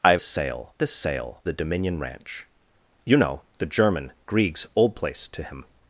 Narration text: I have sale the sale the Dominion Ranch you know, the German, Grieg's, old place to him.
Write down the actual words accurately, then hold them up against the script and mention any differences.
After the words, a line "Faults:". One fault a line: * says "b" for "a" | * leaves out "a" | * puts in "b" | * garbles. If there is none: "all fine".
I have sale the sale the Dominion Ranch you know, the German, Grieg's, old place to him.
Faults:
all fine